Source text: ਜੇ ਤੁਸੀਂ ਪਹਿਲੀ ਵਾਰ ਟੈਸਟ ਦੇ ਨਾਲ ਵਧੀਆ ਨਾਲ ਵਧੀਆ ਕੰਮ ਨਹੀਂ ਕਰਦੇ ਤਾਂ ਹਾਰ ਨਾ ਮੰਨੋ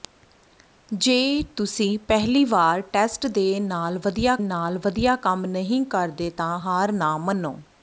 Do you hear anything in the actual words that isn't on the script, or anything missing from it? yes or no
no